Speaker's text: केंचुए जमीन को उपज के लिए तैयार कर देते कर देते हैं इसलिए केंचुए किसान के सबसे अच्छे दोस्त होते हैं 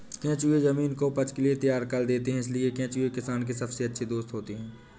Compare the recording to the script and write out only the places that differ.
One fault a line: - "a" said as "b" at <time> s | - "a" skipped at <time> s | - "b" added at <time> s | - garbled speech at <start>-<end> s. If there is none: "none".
- "कर देते" skipped at 2.3 s